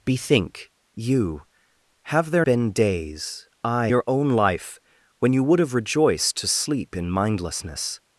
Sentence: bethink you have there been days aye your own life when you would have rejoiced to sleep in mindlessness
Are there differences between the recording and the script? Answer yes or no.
no